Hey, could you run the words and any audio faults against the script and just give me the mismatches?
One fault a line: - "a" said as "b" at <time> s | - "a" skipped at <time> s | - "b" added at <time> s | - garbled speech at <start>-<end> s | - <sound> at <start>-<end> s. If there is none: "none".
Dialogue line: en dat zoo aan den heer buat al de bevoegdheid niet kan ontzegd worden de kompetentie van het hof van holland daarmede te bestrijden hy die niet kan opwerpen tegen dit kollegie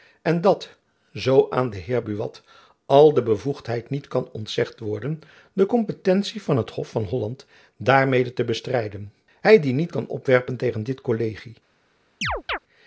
- chirp at 12.2-12.6 s